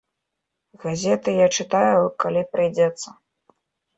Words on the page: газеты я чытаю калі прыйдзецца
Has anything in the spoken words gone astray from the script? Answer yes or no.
no